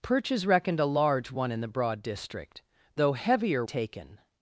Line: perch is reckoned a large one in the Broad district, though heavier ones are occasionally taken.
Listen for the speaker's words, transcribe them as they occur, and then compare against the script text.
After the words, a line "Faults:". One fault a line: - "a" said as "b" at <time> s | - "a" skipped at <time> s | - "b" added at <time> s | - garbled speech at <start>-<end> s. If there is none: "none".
perch is reckoned a large one in the Broad district, though heavier taken.
Faults:
- "ones are occasionally" skipped at 3.6 s